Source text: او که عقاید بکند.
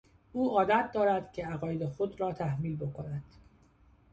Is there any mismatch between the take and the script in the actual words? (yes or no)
yes